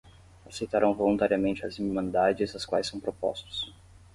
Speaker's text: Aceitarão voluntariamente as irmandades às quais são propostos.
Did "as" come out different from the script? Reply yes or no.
no